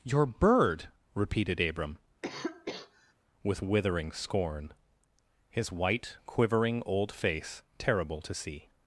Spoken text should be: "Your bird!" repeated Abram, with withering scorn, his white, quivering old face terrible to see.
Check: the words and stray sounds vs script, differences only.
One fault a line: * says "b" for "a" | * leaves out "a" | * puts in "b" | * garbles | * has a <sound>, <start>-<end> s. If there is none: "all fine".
* has a cough, 2.2-3.1 s